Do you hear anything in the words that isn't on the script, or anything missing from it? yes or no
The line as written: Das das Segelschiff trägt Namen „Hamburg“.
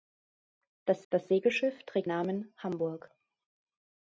no